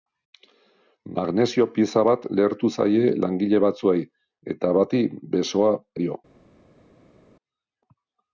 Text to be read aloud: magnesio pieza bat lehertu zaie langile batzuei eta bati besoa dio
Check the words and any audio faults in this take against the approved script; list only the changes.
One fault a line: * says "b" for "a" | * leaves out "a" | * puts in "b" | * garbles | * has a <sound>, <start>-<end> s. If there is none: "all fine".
all fine